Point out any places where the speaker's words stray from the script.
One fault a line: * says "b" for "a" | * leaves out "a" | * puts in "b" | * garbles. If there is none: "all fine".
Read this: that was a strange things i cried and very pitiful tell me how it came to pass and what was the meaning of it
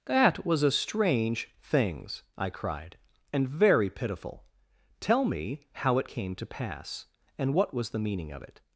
all fine